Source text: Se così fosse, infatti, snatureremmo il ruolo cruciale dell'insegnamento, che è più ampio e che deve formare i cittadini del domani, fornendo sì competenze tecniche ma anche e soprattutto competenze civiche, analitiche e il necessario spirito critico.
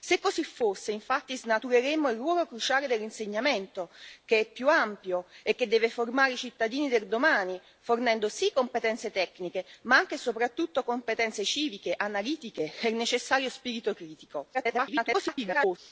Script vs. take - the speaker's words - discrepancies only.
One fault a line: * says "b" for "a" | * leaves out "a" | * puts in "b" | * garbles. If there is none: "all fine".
* garbles